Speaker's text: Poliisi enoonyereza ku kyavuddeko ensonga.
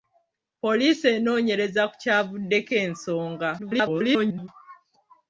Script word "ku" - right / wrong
right